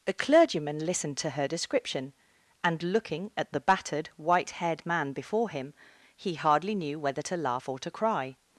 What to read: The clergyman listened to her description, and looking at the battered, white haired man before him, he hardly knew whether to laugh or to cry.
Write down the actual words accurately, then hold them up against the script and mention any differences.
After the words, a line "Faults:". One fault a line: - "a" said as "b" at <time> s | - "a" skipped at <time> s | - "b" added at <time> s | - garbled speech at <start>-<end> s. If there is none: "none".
A clergyman listened to her description, and looking at the battered, white haired man before him, he hardly knew whether to laugh or to cry.
Faults:
- "The" said as "A" at 0.1 s